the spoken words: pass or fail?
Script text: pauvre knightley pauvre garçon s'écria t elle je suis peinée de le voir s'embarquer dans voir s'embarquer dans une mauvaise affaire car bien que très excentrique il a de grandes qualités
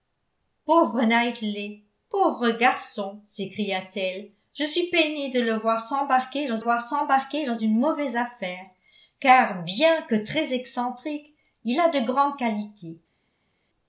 pass